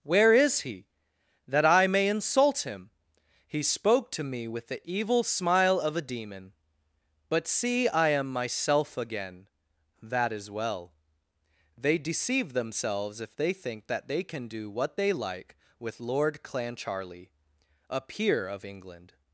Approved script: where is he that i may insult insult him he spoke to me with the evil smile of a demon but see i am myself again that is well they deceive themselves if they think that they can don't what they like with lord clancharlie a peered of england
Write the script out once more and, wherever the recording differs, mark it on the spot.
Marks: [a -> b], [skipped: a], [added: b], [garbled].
where is he that i may insult [skipped: insult] him he spoke to me with the evil smile of a demon but see i am myself again that is well they deceive themselves if they think that they can [don't -> do] what they like with lord clancharlie a [peered -> peer] of england